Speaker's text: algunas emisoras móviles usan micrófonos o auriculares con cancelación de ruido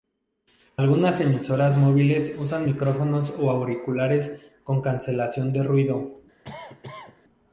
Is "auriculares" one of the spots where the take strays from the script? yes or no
no